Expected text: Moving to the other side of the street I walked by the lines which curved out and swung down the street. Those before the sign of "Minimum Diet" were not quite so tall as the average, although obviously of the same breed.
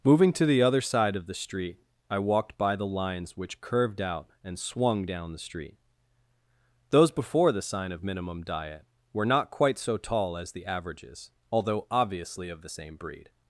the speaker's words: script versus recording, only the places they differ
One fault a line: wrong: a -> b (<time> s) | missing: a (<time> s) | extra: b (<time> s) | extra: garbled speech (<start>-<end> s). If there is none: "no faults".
wrong: average -> averages (10.6 s)